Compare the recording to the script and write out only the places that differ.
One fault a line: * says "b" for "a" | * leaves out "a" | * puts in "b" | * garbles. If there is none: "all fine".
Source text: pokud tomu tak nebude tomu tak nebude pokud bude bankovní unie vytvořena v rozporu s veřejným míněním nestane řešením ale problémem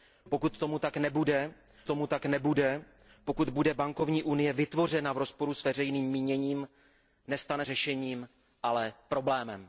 all fine